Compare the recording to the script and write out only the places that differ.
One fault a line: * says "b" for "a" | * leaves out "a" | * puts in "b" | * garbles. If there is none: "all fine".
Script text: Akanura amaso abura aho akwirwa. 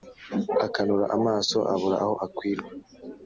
all fine